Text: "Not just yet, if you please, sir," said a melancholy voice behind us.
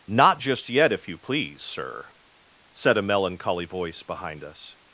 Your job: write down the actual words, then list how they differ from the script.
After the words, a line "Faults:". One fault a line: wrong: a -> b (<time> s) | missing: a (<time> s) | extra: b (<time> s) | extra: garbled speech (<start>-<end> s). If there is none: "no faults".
"Not just yet, if you please, sir," said a melancholy voice behind us.
Faults:
no faults